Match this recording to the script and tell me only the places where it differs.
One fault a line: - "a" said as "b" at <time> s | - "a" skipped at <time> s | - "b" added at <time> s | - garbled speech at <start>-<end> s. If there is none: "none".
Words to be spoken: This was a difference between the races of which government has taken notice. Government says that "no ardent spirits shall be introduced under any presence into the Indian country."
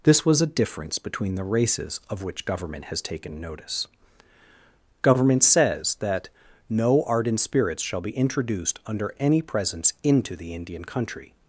none